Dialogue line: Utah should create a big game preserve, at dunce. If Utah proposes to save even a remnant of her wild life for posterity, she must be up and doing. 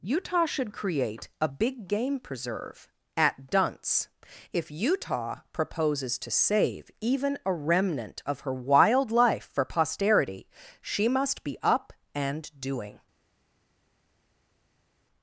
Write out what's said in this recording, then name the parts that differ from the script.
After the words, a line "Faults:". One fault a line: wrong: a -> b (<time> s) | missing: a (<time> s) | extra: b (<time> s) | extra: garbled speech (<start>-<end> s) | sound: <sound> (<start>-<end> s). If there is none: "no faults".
Utah should create a big game preserve, at dunce. If Utah proposes to save even a remnant of her wild life for posterity, she must be up and doing.
Faults:
no faults